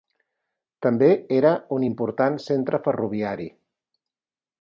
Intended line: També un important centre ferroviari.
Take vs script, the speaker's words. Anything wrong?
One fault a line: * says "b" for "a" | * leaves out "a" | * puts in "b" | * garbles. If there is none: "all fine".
* puts in "era"